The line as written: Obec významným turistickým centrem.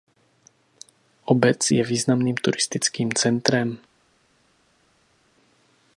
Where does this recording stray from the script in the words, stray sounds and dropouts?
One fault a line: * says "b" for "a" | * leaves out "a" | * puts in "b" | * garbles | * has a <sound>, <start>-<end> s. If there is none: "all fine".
* puts in "je"